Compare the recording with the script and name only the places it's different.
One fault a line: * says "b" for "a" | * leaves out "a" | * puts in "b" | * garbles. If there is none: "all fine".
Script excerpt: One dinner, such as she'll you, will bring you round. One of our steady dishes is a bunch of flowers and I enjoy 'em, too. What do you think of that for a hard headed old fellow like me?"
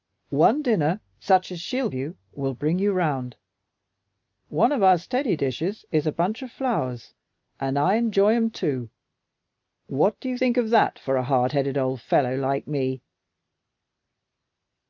all fine